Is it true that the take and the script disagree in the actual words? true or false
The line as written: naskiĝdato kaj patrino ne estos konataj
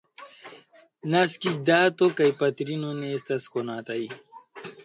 true